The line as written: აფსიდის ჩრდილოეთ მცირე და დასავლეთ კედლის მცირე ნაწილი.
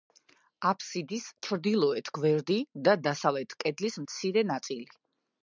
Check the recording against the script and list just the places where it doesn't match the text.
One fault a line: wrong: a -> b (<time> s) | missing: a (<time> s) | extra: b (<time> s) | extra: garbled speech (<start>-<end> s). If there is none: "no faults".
wrong: მცირე -> გვერდი (2.2 s)